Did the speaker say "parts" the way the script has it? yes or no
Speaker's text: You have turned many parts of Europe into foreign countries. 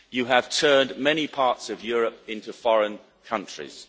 yes